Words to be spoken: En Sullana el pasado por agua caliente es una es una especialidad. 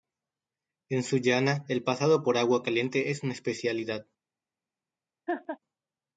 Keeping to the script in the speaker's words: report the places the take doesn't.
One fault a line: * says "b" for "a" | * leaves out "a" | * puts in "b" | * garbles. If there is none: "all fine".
* leaves out "es una"